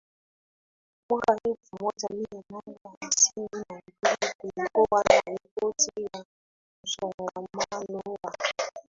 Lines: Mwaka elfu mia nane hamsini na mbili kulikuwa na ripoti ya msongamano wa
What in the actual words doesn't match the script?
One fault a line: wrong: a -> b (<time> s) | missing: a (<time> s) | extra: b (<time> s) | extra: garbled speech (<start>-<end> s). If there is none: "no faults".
extra: moja (1.8 s)